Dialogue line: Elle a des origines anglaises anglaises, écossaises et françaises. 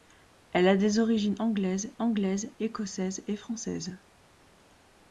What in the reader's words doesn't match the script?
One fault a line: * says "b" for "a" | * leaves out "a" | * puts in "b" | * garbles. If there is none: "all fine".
all fine